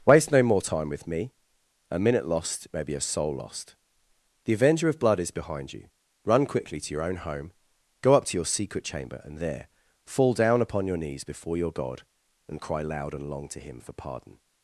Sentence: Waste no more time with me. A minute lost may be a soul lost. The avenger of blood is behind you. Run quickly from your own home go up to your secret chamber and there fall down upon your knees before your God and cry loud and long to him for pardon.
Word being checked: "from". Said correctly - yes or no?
no